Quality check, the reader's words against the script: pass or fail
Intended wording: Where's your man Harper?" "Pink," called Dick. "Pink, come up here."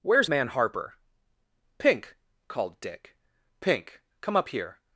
fail